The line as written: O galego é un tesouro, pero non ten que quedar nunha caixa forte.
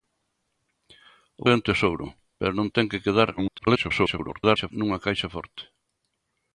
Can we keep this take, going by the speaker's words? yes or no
no